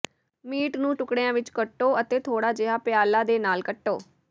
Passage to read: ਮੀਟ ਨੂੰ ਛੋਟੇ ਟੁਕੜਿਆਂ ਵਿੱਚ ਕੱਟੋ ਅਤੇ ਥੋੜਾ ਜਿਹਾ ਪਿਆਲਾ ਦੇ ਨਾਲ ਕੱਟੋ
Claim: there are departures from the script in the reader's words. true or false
true